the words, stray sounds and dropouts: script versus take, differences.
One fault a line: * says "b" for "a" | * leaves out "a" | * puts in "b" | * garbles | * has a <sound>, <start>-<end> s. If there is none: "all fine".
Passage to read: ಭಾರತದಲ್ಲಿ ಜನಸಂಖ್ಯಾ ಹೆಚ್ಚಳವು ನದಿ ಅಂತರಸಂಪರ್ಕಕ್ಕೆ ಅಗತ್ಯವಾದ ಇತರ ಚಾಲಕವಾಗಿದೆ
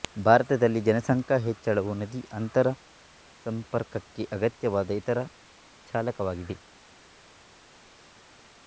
all fine